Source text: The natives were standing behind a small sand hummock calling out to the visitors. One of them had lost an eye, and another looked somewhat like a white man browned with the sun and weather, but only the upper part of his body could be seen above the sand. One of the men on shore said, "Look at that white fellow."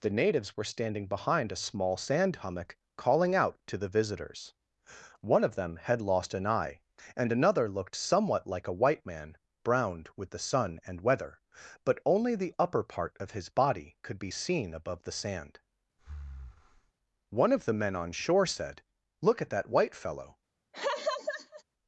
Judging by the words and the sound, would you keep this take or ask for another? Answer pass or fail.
fail